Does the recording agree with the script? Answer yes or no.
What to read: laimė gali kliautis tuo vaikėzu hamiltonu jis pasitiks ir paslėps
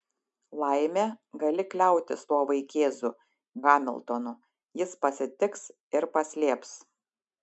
yes